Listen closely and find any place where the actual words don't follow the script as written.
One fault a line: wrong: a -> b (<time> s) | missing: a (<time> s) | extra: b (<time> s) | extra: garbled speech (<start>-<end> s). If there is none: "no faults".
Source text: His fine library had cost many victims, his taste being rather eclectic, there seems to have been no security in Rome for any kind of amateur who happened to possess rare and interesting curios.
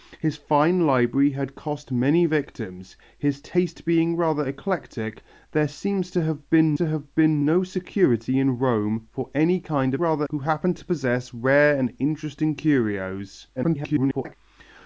extra: to have been (6.7 s)
wrong: amateur -> rather (10.0 s)
extra: garbled speech (13.6-14.3 s)